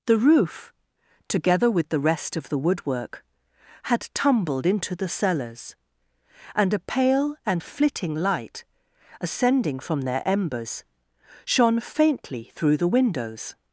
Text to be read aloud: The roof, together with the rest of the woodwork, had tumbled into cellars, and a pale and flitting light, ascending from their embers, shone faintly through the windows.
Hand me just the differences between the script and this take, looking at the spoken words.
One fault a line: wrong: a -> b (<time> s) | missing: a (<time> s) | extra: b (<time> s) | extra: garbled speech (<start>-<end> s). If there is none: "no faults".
extra: the (5.0 s)